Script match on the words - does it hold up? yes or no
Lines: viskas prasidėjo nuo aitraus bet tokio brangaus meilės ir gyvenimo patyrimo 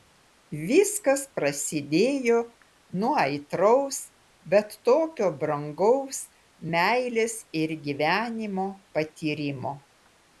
yes